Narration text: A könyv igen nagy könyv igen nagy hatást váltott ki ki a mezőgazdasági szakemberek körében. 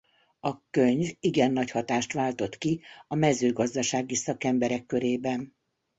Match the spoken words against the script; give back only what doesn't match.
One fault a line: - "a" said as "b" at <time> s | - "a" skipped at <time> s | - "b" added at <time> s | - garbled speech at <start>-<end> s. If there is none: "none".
- "könyv igen nagy" skipped at 1.7 s
- "ki" skipped at 2.8 s